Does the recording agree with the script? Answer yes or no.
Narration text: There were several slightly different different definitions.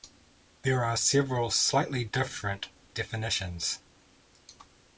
no